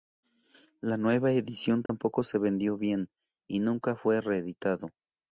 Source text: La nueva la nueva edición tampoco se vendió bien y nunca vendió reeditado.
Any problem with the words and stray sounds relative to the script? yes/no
yes